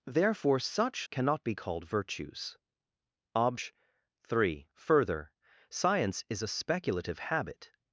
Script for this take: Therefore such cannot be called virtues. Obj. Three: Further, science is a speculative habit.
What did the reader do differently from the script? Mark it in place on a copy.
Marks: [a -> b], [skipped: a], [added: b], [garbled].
Therefore such cannot be called virtues. Obj. Three: Further, science is a speculative habit.